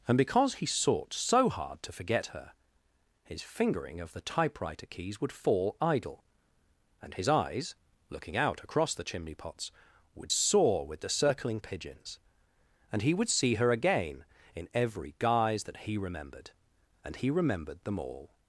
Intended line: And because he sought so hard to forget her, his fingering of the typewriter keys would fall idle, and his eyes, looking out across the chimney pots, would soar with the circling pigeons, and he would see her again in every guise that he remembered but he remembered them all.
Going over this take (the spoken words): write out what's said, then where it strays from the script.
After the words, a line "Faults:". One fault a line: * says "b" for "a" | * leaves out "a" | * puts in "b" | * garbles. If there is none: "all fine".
And because he sought so hard to forget her, his fingering of the typewriter keys would fall idle, and his eyes, looking out across the chimney pots, would soar with the circling pigeons, and he would see her again in every guise that he remembered and he remembered them all.
Faults:
* says "and" for "but"